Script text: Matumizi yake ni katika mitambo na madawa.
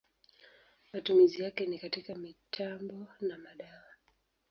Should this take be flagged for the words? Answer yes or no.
no